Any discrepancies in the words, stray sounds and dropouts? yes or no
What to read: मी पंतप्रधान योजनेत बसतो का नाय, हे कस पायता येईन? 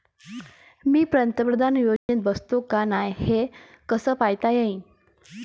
yes